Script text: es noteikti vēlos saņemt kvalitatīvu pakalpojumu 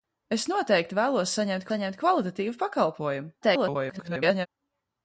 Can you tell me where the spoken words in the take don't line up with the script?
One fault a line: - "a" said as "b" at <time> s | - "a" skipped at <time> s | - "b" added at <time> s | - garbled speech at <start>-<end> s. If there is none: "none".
- "saņemt" added at 1.7 s
- garbled speech at 3.4-4.5 s